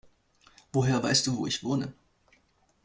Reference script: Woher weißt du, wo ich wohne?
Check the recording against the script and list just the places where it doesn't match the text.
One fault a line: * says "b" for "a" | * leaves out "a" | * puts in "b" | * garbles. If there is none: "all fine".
all fine